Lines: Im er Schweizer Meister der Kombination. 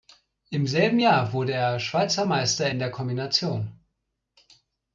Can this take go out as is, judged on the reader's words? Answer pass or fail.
fail